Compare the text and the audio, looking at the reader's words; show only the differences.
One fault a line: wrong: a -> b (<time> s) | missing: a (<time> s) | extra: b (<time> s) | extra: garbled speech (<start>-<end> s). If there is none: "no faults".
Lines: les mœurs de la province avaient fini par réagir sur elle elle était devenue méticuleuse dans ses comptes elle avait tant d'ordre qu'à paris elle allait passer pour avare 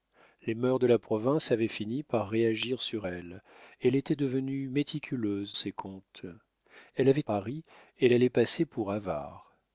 missing: dans (5.6 s)
missing: tant d'ordre qu'à (7.2 s)